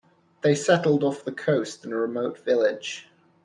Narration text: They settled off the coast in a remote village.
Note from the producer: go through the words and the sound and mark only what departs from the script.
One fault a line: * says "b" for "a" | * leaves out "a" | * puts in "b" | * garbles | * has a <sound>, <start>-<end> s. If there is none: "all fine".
all fine